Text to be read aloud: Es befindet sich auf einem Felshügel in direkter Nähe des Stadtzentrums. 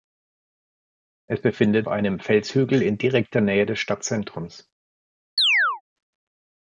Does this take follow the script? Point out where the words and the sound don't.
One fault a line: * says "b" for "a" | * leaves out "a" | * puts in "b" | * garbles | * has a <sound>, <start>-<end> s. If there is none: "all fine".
* leaves out "sich auf"
* has a chirp, 5.4-5.8 s